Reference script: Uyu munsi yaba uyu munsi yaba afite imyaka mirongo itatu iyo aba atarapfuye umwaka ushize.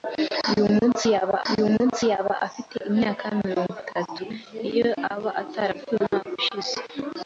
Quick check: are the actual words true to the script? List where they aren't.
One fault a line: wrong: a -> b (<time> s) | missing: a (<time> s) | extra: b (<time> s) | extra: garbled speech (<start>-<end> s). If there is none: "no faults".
no faults